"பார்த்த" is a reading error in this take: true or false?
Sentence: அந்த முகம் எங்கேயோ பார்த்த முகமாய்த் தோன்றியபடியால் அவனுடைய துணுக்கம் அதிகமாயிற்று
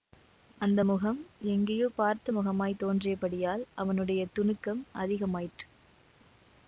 false